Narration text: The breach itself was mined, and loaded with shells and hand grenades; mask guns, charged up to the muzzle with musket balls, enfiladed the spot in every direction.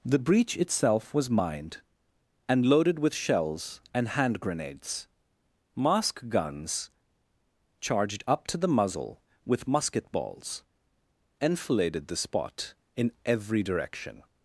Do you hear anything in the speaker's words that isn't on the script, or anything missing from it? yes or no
no